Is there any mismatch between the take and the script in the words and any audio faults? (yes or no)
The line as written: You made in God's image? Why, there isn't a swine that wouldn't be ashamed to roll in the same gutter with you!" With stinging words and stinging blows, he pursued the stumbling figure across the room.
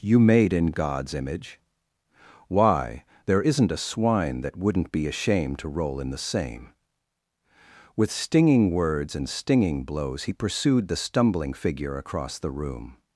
yes